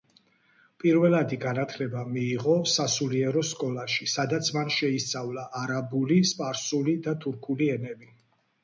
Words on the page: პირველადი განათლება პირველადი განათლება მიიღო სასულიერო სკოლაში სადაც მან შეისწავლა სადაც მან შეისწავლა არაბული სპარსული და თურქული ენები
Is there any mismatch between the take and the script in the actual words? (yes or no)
yes